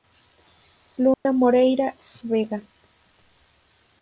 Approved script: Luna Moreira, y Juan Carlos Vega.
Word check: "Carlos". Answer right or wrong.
wrong